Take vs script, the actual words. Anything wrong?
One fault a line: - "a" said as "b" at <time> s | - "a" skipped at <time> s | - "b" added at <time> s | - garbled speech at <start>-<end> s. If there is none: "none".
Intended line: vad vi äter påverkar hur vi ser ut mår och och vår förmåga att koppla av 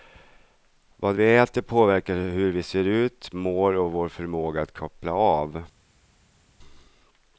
- "och" skipped at 3.9 s